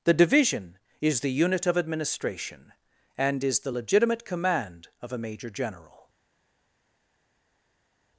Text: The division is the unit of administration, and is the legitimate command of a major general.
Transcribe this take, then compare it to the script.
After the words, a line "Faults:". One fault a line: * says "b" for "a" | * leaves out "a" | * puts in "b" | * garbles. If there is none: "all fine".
The division is the unit of administration, and is the legitimate command of a major general.
Faults:
all fine